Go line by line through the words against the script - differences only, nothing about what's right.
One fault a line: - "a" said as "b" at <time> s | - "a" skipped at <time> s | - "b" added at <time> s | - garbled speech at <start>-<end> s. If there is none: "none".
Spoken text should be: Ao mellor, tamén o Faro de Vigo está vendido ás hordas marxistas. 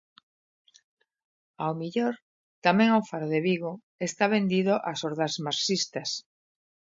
none